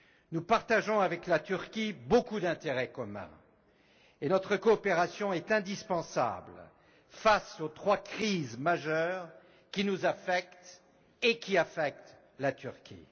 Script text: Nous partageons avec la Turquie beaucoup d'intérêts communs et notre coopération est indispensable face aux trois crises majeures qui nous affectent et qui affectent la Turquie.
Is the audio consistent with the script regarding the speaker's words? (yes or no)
yes